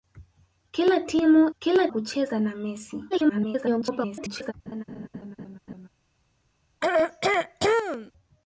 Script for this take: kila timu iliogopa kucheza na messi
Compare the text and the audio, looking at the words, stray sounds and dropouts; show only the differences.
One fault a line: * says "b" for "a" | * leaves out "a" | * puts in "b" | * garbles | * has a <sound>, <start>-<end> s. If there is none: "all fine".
* says "kila" for "iliogopa"
* garbles
* has a laugh, 4.7-5.9 s
* has a throat clearing, 6.8-8.1 s